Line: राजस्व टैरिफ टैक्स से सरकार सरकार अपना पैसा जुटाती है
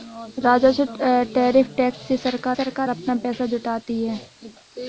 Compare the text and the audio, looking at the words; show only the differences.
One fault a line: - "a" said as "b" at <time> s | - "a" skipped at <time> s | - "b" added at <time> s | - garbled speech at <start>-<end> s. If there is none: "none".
none